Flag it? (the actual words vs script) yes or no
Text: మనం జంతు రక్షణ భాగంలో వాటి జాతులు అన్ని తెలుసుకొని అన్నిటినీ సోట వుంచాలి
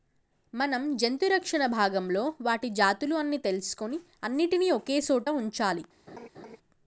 yes